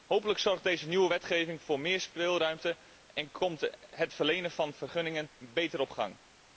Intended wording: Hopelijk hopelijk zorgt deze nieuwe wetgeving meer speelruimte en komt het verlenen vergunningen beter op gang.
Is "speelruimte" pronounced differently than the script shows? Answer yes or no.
no